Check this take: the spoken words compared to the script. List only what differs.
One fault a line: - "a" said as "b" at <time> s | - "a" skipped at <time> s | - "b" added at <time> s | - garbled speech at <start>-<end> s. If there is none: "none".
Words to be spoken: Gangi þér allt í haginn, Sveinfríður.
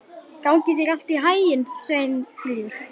none